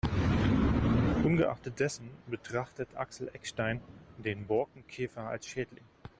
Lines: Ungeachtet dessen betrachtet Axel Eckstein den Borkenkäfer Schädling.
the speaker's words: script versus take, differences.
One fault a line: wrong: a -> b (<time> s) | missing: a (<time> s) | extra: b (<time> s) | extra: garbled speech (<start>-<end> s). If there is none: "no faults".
extra: als (5.3 s)